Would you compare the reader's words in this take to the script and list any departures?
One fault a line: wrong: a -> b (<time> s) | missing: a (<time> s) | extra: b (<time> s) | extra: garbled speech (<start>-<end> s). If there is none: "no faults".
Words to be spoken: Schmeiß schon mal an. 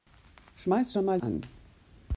no faults